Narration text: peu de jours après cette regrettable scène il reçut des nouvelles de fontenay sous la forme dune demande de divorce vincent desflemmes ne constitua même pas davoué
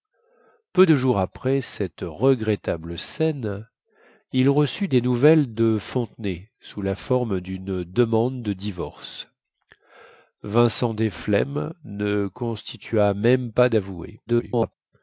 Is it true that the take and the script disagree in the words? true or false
true